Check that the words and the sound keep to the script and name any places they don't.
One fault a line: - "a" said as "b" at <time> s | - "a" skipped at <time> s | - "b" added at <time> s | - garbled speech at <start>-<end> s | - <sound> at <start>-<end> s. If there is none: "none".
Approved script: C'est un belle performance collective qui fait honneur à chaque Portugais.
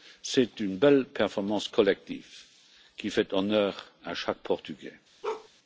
- "un" said as "une" at 0.6 s
- bark at 5.2-5.5 s